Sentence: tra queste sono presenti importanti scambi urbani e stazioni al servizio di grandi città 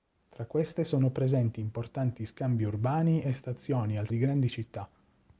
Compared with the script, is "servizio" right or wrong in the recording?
wrong